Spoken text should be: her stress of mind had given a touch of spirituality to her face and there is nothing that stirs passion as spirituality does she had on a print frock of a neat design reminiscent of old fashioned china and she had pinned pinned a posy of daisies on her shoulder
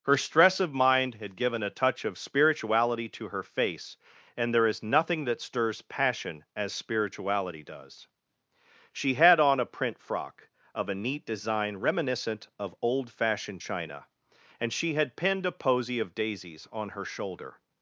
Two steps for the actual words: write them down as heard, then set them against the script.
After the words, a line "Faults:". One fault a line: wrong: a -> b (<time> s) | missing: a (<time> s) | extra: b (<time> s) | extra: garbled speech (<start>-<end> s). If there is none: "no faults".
her stress of mind had given a touch of spirituality to her face and there is nothing that stirs passion as spirituality does she had on a print frock of a neat design reminiscent of old fashioned china and she had pinned a posy of daisies on her shoulder
Faults:
missing: pinned (15.5 s)